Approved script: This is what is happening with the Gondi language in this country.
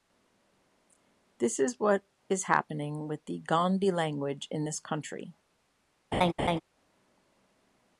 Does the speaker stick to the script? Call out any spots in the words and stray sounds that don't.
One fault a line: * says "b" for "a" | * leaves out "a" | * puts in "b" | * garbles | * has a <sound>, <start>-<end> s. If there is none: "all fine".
* has a laugh, 6.1-6.6 s